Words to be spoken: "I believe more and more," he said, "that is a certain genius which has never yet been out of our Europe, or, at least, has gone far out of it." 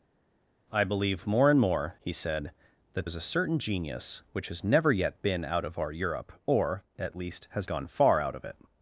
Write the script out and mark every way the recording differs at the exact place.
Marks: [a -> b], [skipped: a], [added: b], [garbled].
"I believe more and more," he said, "that is a certain genius which has never yet been out of our Europe, or, at least, has gone far out of it."